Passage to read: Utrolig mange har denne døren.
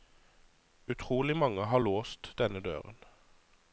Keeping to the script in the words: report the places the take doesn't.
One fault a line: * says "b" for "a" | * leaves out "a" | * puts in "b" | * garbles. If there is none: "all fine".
* puts in "låst"